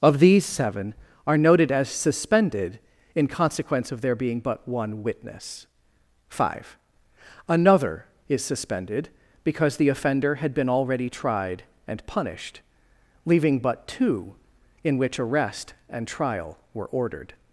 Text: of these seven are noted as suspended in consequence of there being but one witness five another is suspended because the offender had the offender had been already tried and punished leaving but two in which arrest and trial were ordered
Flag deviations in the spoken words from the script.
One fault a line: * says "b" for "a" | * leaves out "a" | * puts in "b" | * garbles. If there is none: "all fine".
* leaves out "the offender had"